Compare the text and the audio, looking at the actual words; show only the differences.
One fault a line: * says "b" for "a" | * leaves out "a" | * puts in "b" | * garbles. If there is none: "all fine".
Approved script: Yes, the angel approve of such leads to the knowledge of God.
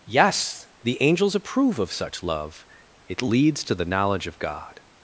* says "angels" for "angel"
* puts in "love it"